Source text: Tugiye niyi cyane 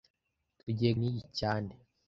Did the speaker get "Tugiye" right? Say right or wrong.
right